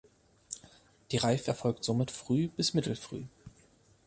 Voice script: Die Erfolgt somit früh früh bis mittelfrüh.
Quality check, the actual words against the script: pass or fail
fail